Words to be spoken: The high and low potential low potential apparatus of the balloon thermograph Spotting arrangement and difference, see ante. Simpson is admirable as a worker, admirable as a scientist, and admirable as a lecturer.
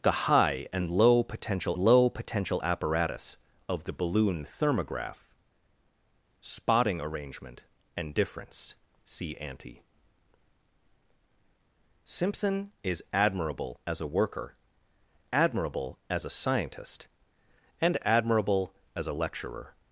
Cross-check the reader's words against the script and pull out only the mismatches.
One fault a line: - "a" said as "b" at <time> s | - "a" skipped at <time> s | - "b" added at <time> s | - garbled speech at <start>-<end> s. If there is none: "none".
none